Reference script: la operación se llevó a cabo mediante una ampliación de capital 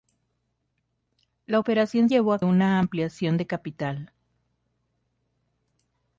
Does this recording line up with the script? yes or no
no